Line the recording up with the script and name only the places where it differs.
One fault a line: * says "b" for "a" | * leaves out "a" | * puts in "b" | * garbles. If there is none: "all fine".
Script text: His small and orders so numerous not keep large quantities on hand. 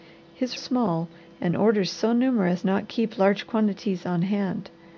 all fine